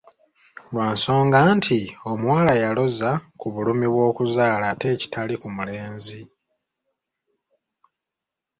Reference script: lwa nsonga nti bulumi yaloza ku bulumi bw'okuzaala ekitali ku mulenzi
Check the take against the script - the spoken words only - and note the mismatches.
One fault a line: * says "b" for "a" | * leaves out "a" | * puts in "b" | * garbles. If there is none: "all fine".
* says "omuwala" for "bulumi"
* puts in "ate"